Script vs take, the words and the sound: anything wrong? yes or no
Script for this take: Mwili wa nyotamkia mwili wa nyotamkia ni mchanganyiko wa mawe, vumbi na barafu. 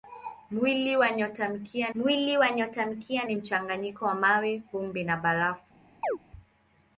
yes